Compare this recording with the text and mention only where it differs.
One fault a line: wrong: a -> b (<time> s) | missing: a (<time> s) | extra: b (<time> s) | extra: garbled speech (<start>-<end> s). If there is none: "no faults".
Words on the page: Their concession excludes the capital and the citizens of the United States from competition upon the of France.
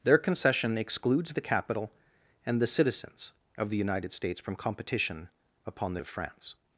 no faults